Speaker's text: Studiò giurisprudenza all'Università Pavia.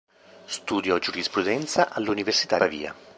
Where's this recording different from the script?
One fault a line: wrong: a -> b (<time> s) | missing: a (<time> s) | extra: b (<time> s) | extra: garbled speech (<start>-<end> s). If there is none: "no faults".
no faults